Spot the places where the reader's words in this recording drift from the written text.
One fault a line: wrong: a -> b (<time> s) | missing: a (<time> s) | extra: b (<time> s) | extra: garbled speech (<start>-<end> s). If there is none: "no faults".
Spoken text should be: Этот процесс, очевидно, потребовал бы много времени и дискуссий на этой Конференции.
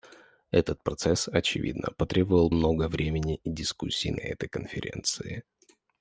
missing: бы (2.5 s)